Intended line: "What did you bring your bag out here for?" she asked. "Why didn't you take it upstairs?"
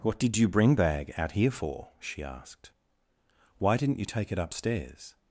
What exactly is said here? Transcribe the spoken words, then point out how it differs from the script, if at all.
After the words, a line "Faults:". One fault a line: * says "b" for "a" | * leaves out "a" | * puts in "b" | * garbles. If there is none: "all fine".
"What did you bring bag out here for?" she asked. "Why didn't you take it upstairs?"
Faults:
* leaves out "your"